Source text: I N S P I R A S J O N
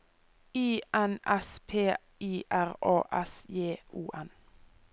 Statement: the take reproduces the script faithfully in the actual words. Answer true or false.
true